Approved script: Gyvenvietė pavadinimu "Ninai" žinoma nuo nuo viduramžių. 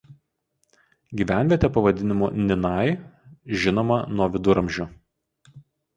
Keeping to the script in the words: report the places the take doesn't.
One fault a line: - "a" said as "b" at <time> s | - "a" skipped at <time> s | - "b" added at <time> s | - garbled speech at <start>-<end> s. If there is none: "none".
- "nuo" skipped at 4.3 s